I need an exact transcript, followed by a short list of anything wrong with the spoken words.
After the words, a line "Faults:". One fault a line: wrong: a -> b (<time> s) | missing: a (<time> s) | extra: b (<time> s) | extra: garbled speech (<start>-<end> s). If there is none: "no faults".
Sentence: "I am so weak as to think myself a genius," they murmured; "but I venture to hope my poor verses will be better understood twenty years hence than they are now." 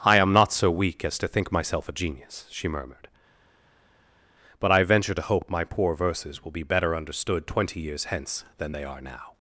"I am not so weak as to think myself a genius," she murmured; "but I venture to hope my poor verses will be better understood twenty years hence than they are now."
Faults:
extra: not (0.3 s)
wrong: they -> she (2.5 s)